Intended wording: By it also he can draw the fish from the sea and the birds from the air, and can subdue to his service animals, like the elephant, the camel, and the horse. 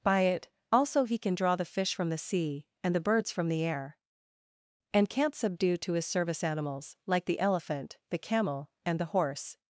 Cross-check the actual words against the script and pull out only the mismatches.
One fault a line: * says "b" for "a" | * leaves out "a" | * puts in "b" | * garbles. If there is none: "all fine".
* says "can't" for "can"